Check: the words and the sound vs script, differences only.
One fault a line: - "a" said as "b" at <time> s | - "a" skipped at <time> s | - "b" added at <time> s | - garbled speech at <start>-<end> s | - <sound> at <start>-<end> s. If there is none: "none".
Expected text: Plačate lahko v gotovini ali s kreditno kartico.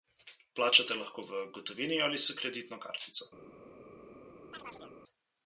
- chirp at 4.5-4.9 s